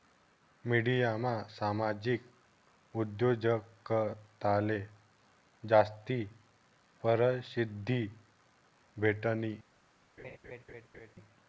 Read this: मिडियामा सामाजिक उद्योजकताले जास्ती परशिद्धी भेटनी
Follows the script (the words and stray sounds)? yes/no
no